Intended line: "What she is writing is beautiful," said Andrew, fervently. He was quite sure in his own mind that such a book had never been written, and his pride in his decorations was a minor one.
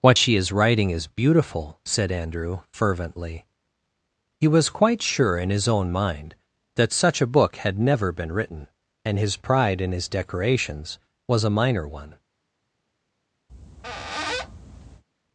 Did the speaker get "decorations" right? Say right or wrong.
right